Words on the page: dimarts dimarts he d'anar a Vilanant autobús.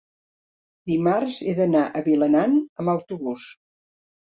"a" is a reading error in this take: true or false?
false